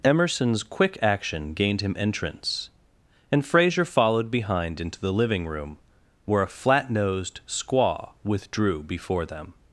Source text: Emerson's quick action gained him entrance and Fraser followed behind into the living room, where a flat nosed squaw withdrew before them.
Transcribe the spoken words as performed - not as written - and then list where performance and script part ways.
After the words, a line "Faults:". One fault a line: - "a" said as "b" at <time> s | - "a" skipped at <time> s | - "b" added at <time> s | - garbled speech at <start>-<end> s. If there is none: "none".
Emerson's quick action gained him entrance and Fraser followed behind into the living room, where a flat nosed squaw withdrew before them.
Faults:
none